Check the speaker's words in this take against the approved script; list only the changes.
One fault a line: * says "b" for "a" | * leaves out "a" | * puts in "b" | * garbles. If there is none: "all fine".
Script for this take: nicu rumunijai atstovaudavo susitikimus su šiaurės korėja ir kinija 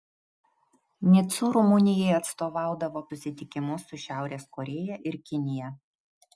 all fine